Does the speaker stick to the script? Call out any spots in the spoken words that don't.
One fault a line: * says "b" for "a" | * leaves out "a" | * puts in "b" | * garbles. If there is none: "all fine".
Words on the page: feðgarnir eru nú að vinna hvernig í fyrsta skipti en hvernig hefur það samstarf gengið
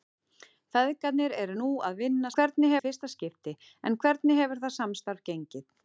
all fine